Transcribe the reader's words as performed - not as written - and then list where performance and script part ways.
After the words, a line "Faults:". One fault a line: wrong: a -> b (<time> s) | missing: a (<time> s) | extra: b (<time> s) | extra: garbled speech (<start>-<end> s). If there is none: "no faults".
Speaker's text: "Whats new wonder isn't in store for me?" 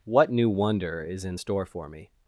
"What new wonder is in store for me?"
Faults:
wrong: Whats -> What (0.1 s)
wrong: isn't -> is (1.0 s)